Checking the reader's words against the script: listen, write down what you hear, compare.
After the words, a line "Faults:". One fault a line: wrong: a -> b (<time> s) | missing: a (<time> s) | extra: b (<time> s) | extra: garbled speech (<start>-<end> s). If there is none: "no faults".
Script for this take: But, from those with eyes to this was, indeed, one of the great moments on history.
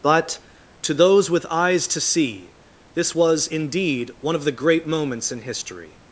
But, to those with eyes to see, this was, indeed, one of the great moments in history.
Faults:
wrong: from -> to (0.8 s)
extra: see (2.0 s)
wrong: on -> in (5.3 s)